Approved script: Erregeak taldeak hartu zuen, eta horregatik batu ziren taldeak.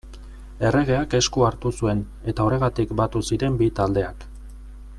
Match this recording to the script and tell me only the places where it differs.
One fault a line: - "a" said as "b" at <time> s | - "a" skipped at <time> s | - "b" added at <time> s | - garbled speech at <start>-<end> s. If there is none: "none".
- "taldeak" said as "esku" at 1.2 s
- "bi" added at 3.6 s